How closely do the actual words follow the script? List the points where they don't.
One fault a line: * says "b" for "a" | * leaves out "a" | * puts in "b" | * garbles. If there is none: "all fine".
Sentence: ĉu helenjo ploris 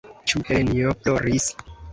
all fine